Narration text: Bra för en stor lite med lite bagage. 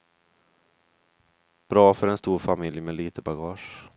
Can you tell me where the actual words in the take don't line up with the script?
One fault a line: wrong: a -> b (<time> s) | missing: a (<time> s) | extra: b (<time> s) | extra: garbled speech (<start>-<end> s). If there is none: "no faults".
wrong: lite -> familj (2.4 s)